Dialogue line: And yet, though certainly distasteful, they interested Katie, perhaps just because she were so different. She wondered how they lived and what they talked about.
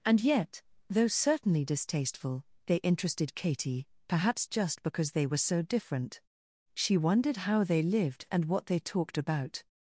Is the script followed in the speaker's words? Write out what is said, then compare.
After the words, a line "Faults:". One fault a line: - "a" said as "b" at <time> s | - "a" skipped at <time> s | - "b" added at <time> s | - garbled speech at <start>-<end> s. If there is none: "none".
And yet, though certainly distasteful, they interested Katie, perhaps just because they were so different. She wondered how they lived and what they talked about.
Faults:
- "she" said as "they" at 5.1 s